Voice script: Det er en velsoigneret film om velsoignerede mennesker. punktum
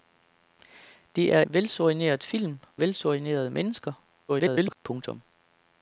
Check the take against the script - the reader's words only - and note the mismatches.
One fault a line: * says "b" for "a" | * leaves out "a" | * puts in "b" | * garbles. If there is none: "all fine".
* leaves out "en"
* leaves out "om"
* garbles